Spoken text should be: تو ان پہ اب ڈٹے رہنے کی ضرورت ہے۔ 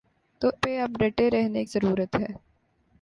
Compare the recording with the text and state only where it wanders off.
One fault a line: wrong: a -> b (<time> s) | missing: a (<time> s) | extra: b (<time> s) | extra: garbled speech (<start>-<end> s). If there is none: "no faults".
missing: ان (0.5 s)
missing: کی (1.6 s)